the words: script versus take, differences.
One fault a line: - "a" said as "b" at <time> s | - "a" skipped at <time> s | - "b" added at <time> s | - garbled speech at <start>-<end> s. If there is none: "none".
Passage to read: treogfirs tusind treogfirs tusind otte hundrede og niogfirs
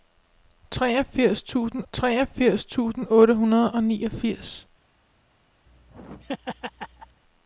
none